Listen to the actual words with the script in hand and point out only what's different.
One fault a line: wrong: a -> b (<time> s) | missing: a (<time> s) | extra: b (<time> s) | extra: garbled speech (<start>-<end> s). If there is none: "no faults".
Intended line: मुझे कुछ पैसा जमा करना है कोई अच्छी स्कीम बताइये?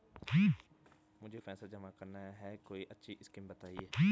missing: कुछ (1.4 s)